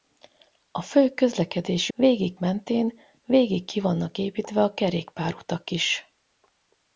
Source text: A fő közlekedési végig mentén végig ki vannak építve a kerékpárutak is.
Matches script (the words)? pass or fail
pass